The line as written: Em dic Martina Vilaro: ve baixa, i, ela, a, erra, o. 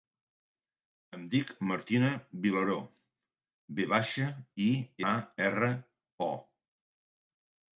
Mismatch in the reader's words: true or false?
true